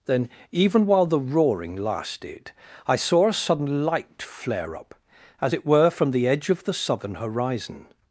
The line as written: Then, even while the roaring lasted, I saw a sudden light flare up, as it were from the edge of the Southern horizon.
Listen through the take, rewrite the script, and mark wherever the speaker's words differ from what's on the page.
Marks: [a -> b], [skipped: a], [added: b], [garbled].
Then, even while the roaring lasted, I saw a sudden light flare up, as it were from the edge of the Southern horizon.